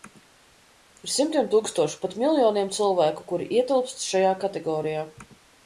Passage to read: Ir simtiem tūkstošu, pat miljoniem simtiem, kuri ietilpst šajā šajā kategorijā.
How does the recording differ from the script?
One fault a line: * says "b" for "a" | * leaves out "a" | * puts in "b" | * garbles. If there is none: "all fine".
* says "cilvēku" for "simtiem"
* leaves out "šajā"